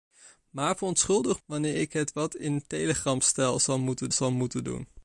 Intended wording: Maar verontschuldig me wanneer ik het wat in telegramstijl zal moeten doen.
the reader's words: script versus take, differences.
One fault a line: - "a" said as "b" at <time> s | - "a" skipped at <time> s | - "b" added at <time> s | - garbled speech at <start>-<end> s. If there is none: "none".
- "me" skipped at 1.4 s
- "zal moeten" added at 4.1 s